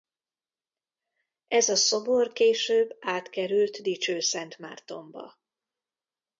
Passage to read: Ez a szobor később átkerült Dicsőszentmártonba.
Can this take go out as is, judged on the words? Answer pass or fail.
pass